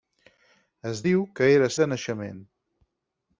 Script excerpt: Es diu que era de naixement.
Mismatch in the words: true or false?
false